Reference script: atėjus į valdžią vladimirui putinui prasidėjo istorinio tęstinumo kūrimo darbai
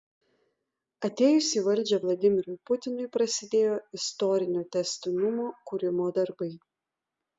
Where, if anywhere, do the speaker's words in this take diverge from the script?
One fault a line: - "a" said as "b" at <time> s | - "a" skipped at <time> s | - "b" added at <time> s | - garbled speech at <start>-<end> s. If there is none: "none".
none